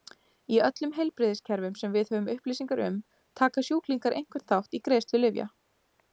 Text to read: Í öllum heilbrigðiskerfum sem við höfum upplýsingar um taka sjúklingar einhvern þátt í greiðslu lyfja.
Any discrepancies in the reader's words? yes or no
no